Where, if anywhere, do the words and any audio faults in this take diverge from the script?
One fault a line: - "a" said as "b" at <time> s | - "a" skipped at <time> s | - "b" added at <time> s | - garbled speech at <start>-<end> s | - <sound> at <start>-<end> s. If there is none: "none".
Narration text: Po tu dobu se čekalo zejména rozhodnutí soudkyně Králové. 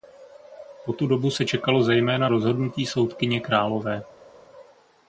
none